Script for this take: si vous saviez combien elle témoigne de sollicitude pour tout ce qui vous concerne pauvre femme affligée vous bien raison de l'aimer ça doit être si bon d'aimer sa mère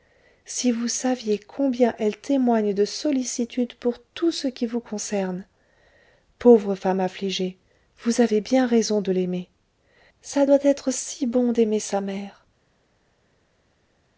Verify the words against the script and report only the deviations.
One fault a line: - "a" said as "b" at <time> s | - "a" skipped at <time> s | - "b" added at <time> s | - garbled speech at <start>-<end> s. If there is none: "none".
- "avez" added at 8.2 s